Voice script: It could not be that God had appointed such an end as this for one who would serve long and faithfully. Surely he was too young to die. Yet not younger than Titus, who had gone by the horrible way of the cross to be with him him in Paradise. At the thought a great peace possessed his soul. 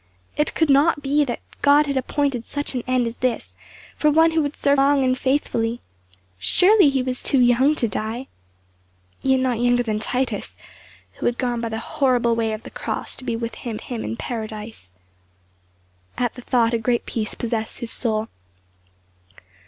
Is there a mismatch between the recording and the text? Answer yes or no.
no